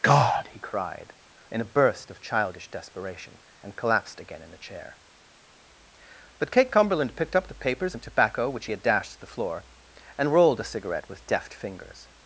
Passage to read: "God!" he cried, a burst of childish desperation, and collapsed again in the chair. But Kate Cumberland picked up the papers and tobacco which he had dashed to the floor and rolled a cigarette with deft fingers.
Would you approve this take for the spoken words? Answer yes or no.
no